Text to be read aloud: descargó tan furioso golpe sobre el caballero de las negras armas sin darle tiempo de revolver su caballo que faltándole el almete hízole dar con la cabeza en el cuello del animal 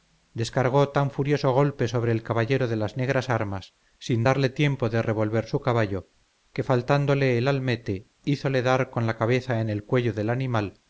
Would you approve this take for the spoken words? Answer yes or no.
yes